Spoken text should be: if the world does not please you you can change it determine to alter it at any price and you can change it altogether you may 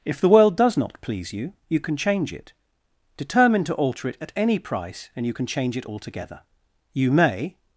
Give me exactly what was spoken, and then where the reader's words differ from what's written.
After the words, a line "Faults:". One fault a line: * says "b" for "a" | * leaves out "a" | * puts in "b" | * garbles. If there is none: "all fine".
if the world does not please you you can change it determine to alter it at any price and you can change it altogether you may
Faults:
all fine